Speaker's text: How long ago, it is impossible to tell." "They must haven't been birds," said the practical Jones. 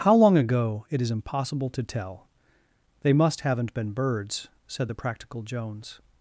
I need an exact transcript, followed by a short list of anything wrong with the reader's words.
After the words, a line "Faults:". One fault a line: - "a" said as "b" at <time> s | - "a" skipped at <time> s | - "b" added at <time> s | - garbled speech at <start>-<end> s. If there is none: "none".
How long ago, it is impossible to tell." "They must haven't been birds," said the practical Jones.
Faults:
none